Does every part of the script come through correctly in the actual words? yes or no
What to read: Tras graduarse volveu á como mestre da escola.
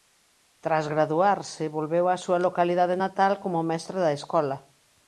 no